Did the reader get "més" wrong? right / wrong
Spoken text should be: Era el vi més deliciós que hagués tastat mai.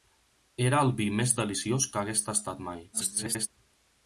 right